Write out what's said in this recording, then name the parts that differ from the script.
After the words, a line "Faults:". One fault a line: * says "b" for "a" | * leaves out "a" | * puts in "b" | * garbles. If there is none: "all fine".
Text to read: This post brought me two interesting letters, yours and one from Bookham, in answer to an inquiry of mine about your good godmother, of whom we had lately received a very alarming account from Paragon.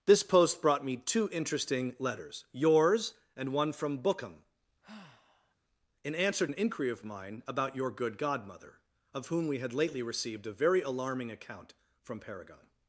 This post brought me two interesting letters, yours and one from Bookham, in answer an inquiry of mine about your good godmother, of whom we had lately received a very alarming account from Paragon.
Faults:
* leaves out "to"